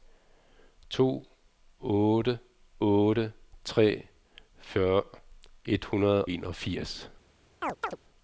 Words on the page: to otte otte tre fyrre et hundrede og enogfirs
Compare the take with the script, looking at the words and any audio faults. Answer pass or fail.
fail